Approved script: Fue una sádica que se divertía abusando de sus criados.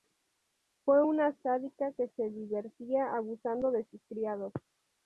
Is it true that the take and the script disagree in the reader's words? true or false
false